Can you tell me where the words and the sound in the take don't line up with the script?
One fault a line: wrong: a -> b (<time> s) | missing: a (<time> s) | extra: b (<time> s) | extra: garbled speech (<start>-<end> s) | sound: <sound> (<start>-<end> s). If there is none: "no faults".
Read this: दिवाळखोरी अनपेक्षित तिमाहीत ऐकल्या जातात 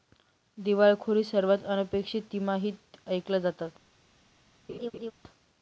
extra: सर्वात (1.2 s)
sound: laugh (4.7-5.1 s)